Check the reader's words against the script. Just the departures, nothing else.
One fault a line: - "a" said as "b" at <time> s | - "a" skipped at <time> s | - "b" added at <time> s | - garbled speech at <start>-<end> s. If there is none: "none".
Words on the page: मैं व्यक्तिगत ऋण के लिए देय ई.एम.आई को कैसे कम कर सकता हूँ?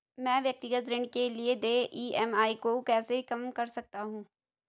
none